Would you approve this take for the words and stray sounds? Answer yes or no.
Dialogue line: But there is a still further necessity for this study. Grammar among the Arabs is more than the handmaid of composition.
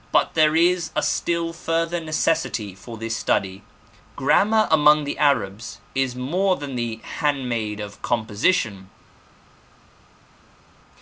yes